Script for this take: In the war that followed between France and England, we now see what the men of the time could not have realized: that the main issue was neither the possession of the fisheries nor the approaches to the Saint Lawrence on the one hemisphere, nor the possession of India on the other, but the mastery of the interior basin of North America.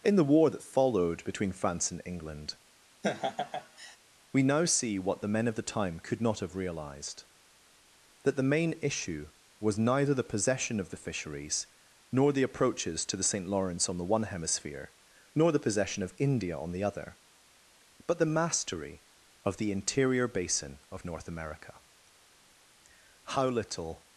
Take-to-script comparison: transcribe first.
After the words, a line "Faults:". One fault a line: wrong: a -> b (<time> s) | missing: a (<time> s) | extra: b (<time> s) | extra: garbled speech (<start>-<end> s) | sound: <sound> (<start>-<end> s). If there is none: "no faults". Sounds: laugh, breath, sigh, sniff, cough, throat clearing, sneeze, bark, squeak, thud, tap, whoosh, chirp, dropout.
In the war that followed between France and England, we now see what the men of the time could not have realized: that the main issue was neither the possession of the fisheries nor the approaches to the Saint Lawrence on the one hemisphere, nor the possession of India on the other, but the mastery of the interior basin of North America. How little
Faults:
sound: laugh (3.0-4.0 s)
extra: How little (23.2 s)